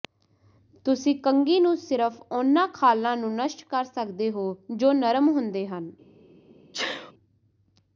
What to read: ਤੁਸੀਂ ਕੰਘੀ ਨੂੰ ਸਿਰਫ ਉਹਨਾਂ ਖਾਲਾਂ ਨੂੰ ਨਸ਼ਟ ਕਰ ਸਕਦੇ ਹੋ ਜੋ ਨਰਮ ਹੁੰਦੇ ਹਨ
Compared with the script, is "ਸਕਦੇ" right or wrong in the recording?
right